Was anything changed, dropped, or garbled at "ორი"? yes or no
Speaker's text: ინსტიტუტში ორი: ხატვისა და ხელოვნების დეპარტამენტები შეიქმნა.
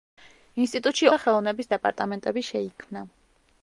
yes